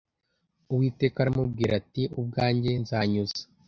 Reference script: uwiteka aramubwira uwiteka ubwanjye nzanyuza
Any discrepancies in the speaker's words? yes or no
yes